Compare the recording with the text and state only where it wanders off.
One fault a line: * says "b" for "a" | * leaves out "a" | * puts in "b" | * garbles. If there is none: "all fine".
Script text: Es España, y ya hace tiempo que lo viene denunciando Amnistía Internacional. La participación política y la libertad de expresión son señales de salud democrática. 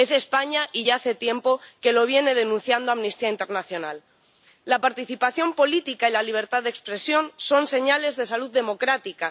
all fine